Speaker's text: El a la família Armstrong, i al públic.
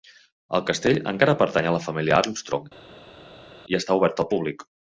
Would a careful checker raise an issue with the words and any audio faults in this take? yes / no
yes